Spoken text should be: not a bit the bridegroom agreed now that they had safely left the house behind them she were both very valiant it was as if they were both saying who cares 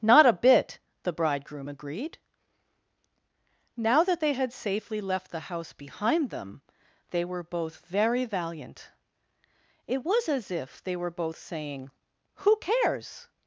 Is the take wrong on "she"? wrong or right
wrong